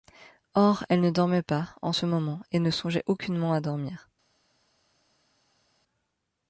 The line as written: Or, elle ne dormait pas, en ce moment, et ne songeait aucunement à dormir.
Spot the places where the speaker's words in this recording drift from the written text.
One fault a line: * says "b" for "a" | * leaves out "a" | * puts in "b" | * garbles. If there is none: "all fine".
all fine